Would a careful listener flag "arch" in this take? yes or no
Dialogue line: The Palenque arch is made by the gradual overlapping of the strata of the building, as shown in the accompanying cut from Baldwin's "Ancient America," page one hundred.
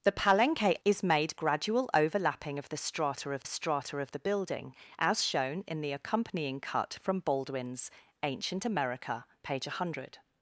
yes